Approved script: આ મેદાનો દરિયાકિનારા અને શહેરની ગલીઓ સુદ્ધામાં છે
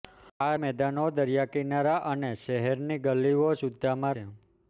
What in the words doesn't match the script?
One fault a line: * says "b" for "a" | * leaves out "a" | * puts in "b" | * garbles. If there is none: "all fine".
all fine